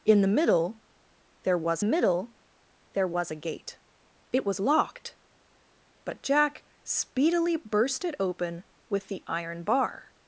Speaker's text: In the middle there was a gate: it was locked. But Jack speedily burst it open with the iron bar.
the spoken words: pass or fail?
fail